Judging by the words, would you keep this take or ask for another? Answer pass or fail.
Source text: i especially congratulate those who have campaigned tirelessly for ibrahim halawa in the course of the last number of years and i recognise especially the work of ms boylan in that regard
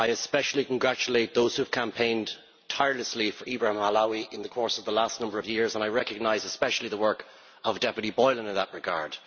pass